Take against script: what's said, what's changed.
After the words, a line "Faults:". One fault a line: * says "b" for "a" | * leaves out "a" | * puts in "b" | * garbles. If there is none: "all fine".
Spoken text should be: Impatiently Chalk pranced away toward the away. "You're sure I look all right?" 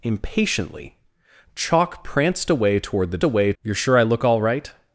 Impatiently Chalk pranced away toward the away. "You're sure I look all right?"
Faults:
all fine